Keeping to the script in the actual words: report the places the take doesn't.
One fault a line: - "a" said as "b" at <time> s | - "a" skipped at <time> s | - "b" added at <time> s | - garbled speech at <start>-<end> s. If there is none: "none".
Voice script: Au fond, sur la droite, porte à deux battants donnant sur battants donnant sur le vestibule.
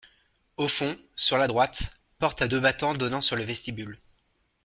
- "battants donnant sur" skipped at 3.3 s